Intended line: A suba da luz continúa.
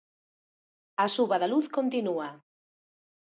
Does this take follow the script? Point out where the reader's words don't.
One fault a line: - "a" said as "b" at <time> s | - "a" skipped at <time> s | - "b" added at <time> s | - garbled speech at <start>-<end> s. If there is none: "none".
none